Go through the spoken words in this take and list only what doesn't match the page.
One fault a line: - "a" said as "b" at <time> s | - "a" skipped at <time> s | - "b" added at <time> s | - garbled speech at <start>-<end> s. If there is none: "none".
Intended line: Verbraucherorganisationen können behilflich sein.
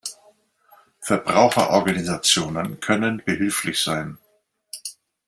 none